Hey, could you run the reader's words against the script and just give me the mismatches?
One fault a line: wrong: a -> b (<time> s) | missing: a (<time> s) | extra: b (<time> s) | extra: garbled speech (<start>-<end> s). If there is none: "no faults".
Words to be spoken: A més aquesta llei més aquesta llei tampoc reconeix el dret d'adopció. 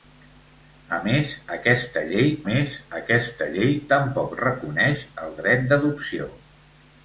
no faults